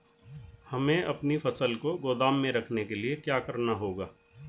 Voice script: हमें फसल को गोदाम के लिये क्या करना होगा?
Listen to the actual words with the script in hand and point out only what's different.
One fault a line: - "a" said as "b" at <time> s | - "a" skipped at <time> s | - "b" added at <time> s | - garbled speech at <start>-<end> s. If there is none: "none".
- "अपनी" added at 1.0 s
- "में रखने" added at 2.3 s